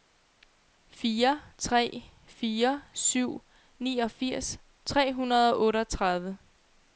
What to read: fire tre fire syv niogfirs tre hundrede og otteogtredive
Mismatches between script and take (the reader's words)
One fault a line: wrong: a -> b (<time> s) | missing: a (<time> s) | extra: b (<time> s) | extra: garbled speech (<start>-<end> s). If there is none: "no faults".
no faults